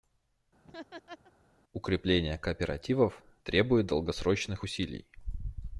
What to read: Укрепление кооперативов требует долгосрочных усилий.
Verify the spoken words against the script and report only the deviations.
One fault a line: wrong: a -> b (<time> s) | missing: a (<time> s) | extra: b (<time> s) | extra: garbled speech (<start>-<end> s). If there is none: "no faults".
no faults